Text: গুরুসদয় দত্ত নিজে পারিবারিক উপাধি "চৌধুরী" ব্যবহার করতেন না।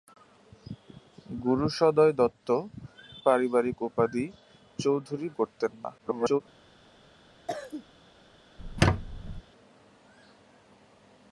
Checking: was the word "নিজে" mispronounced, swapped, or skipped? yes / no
yes